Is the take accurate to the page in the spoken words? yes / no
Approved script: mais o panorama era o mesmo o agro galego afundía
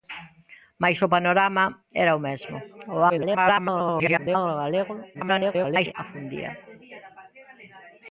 no